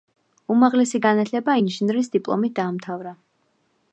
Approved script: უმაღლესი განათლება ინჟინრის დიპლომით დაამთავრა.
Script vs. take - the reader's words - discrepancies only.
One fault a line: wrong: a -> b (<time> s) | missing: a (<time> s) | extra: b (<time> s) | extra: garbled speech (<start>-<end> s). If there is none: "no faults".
no faults